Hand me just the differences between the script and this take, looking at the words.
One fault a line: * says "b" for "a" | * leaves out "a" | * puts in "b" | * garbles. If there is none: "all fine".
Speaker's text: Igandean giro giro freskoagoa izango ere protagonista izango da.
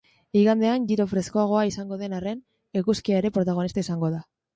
* leaves out "giro"
* puts in "den arren eguzkia"